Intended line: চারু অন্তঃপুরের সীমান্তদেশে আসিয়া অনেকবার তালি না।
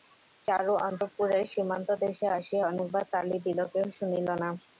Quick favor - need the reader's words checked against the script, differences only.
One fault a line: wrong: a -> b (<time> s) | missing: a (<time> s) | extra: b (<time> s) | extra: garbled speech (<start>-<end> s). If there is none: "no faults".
extra: দিল কেহ শুনিল (3.4 s)